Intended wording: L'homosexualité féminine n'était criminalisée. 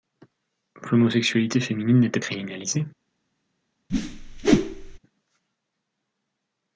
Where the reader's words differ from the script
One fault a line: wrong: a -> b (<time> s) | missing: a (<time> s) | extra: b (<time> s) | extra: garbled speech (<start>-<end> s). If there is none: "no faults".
no faults